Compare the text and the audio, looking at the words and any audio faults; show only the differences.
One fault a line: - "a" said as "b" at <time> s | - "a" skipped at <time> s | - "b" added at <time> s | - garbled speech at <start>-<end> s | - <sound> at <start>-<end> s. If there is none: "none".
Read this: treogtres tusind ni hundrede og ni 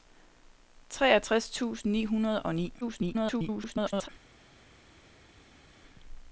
- garbled speech at 2.8-4.1 s